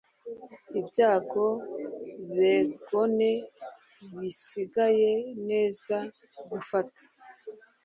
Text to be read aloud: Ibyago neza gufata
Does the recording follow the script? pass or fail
fail